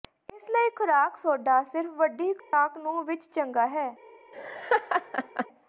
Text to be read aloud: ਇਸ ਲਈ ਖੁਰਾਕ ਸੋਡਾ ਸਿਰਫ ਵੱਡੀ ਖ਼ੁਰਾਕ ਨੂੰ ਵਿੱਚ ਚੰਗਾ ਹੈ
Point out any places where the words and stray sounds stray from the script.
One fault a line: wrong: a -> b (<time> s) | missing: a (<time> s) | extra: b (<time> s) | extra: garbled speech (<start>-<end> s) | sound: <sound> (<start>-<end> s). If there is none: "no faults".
sound: dropout (2.4-2.5 s)
sound: laugh (4.3-5.5 s)